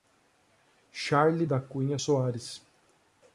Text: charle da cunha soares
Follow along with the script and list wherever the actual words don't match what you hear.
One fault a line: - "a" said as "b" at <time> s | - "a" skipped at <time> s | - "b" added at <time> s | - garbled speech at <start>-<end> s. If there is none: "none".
none